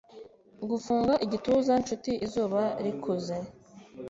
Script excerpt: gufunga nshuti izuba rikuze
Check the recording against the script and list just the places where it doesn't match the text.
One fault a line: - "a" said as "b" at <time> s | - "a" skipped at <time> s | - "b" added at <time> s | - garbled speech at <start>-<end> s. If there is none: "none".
- "igituza" added at 1.3 s